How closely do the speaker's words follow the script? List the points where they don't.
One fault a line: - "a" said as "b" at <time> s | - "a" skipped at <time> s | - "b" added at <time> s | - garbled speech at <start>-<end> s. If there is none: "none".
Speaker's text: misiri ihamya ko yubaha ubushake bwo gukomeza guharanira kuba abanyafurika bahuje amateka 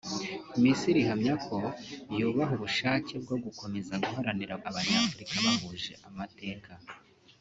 - "kuba" skipped at 4.5 s